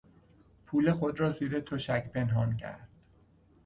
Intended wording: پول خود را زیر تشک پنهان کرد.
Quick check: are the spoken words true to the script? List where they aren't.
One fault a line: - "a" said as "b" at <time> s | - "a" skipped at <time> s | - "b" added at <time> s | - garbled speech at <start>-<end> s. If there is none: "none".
none